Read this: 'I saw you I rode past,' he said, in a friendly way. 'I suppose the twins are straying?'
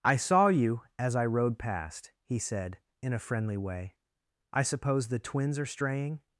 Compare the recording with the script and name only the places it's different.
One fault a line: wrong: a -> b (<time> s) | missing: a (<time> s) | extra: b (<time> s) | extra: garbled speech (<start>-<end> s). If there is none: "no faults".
extra: as (1.0 s)